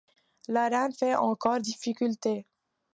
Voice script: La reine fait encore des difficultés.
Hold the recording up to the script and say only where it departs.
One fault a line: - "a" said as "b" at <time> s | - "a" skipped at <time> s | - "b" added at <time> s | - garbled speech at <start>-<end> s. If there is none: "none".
- "des" skipped at 1.6 s